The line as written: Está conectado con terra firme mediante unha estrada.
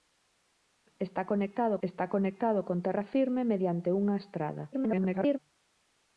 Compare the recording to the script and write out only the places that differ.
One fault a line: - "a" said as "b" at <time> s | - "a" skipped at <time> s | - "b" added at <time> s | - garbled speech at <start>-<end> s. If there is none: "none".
- "está conectado" added at 1.9 s
- garbled speech at 4.7-5.4 s